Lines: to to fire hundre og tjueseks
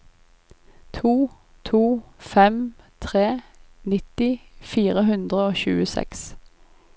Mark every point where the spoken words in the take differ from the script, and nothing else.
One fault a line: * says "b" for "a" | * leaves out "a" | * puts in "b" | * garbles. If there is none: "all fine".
* puts in "fem tre nitti"